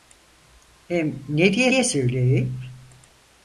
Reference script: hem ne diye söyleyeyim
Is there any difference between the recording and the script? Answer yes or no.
yes